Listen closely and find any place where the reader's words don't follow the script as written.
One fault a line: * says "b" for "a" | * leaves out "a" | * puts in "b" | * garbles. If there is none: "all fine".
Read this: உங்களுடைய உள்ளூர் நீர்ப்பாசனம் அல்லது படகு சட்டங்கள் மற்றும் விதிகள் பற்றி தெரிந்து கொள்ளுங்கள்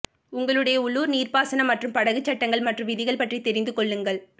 * says "மற்றும்" for "அல்லது"